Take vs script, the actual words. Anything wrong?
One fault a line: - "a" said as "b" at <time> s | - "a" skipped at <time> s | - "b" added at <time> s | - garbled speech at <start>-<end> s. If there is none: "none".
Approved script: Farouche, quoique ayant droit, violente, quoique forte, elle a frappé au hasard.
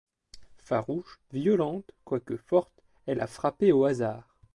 - "quoique ayant droit" skipped at 1.2 s